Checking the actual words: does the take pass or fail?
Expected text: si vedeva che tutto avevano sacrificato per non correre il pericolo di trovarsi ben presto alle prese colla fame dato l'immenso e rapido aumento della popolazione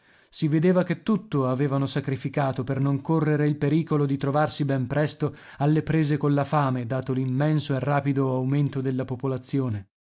pass